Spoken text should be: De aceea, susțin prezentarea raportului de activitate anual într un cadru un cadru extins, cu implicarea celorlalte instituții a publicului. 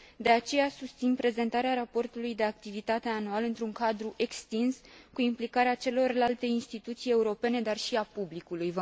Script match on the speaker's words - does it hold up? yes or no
no